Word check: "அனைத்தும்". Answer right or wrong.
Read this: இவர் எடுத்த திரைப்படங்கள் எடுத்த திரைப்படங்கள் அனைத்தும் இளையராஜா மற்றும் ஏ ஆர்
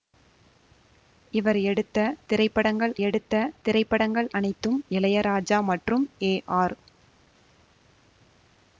right